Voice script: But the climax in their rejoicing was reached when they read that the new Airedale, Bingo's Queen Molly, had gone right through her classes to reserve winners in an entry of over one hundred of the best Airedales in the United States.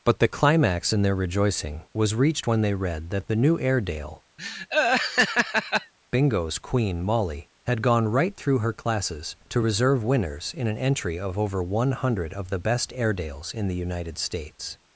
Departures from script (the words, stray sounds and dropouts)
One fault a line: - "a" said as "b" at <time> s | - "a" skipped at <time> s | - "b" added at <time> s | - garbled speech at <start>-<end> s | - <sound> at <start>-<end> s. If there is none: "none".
- laugh at 4.4-5.9 s